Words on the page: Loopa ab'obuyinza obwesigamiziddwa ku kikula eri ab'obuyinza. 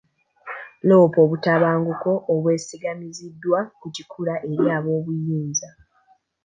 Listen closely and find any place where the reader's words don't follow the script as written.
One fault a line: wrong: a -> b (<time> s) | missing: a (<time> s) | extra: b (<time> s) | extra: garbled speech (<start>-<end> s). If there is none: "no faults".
wrong: ab'obuyinza -> obutabanguko (1.2 s)